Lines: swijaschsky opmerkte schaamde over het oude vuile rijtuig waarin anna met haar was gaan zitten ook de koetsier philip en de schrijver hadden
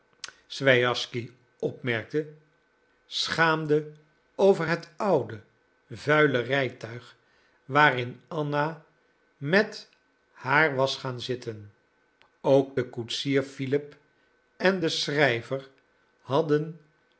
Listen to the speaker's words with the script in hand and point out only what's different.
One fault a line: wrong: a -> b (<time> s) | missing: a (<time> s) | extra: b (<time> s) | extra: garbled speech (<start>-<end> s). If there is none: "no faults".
no faults